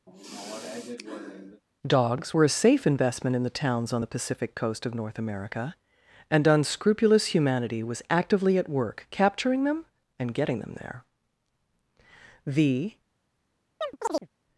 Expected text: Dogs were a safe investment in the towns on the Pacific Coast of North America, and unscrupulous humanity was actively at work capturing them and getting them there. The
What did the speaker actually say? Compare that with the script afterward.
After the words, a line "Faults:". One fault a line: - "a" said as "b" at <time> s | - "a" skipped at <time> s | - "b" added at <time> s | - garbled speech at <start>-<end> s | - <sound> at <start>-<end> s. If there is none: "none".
Dogs were a safe investment in the towns on the Pacific Coast of North America, and unscrupulous humanity was actively at work capturing them and getting them there. The
Faults:
- sigh at 0.1-1.6 s
- chirp at 13.8-14.3 s